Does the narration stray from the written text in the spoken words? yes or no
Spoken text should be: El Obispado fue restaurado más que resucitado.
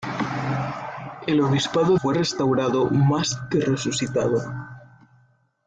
no